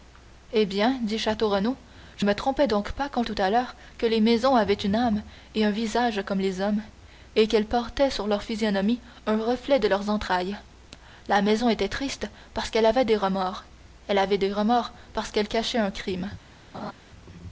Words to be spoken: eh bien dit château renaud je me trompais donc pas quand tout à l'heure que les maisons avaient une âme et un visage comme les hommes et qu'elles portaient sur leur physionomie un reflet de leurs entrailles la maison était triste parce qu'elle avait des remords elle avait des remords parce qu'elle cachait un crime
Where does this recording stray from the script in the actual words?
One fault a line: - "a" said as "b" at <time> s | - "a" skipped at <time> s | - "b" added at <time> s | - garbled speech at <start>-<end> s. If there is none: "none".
none